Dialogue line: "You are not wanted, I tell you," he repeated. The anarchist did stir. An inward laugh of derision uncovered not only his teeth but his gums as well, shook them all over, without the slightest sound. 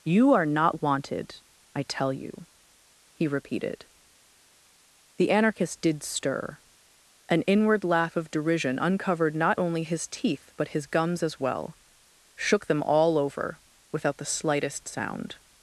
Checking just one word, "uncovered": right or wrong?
right